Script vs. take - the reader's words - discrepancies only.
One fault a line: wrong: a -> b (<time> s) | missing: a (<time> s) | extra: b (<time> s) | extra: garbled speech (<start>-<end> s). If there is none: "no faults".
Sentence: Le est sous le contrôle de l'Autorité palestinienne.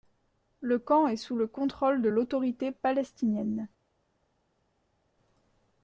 extra: camp (0.8 s)